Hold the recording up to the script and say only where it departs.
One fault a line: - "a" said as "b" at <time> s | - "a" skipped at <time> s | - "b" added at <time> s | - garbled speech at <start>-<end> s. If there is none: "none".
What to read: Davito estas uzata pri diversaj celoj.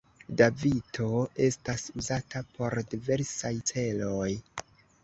- "pri" said as "por" at 2.6 s